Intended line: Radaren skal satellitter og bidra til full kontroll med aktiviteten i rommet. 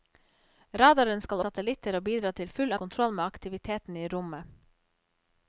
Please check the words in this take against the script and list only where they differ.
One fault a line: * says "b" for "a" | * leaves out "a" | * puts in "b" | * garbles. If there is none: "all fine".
all fine